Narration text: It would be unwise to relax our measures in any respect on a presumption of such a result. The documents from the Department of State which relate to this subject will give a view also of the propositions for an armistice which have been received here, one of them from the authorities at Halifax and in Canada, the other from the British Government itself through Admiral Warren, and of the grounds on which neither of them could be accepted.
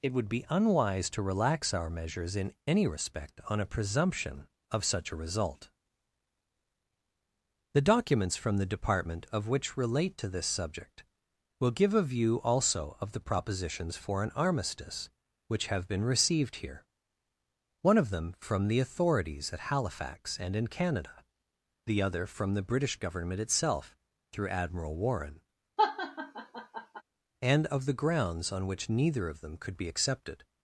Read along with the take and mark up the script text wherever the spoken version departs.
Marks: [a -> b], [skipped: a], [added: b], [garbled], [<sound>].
It would be unwise to relax our measures in any respect on a presumption of such a result. The documents from the Department of [skipped: State] which relate to this subject will give a view also of the propositions for an armistice which have been received here, one of them from the authorities at Halifax and in Canada, the other from the British Government itself through Admiral Warren, [laugh] and of the grounds on which neither of them could be accepted.